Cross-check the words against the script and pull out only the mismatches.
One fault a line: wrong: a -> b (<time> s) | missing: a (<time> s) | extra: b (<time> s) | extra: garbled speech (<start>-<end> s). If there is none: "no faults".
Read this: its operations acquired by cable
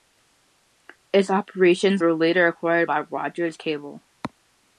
extra: were later (2.0 s)
extra: rogers (3.0 s)